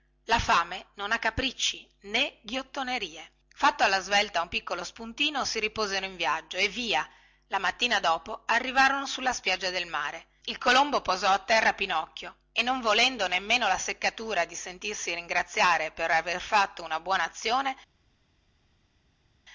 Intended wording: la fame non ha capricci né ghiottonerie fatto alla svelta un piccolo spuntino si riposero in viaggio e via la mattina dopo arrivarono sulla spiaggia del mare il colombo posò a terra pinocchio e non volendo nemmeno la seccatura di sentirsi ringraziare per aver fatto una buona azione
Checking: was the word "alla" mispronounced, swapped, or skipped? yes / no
no